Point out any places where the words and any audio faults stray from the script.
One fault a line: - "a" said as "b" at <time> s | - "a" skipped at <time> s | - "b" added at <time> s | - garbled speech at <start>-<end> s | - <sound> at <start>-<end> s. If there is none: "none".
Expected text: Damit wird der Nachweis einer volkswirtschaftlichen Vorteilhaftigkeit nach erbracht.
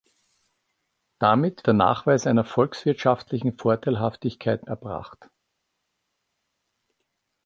- "wird" skipped at 1.7 s
- "nach" skipped at 4.7 s